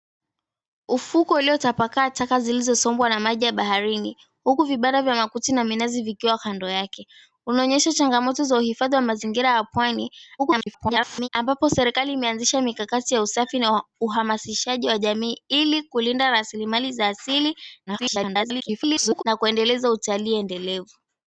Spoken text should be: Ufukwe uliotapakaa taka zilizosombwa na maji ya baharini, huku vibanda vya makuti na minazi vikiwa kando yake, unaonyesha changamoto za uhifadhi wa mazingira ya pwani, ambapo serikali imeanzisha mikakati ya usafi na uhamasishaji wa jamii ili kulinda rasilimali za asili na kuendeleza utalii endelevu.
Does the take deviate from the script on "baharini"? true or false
false